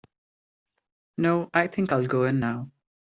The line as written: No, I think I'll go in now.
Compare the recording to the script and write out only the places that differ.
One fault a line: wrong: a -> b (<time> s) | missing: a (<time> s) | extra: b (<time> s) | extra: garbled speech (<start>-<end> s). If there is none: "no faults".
no faults